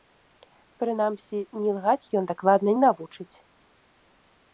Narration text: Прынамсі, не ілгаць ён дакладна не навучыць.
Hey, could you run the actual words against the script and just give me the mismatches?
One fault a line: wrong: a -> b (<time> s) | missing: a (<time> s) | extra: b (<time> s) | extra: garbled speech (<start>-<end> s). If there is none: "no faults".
no faults